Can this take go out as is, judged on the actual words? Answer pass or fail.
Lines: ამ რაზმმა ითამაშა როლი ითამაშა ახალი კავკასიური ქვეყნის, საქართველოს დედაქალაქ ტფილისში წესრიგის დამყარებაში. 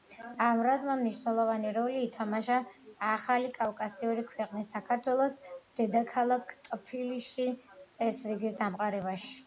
fail